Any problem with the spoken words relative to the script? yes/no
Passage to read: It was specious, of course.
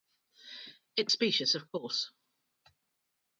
yes